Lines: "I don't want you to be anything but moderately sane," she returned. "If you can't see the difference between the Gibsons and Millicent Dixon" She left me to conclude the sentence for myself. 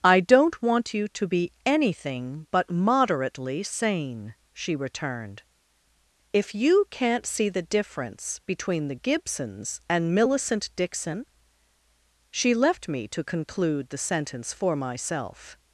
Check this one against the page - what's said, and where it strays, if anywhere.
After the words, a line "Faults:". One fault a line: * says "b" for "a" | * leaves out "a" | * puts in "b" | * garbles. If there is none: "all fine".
"I don't want you to be anything but moderately sane," she returned. "If you can't see the difference between the Gibsons and Millicent Dixon" She left me to conclude the sentence for myself.
Faults:
all fine